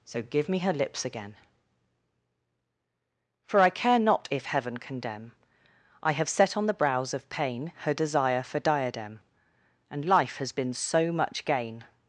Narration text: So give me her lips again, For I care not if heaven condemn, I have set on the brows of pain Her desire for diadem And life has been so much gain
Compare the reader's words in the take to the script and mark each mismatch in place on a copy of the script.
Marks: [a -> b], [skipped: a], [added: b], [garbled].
So give me her lips again, For I care not if heaven condemn, I have set on the brows of pain Her desire for diadem And life has been so much gain